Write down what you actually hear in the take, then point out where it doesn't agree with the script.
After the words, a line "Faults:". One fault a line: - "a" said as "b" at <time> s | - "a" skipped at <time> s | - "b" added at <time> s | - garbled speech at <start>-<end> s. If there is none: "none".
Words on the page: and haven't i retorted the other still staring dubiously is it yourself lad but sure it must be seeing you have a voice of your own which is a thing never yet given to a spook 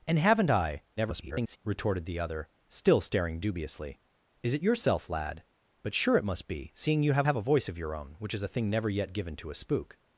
and haven't i [garbled] retorted the other still staring dubiously is it yourself lad but sure it must be seeing you have have a voice of your own which is a thing never yet given to a spook
Faults:
- garbled speech at 1.0-1.6 s
- "have" added at 7.2 s